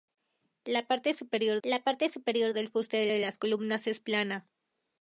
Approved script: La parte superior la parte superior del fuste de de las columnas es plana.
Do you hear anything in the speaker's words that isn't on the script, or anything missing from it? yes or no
no